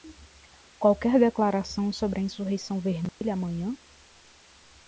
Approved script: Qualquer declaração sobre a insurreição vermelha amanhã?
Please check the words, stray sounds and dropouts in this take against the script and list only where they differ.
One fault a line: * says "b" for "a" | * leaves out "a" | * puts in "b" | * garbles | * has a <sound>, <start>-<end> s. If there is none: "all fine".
* has a dropout, 3.1-3.2 s